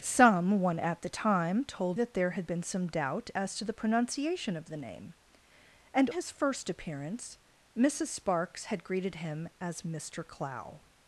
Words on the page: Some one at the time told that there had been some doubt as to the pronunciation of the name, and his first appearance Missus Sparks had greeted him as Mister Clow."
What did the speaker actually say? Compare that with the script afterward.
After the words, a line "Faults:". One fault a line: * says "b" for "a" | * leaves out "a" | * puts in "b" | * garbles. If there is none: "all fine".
Some one at the time told that there had been some doubt as to the pronunciation of the name, and his first appearance Missus Sparks had greeted him as Mister Clow."
Faults:
all fine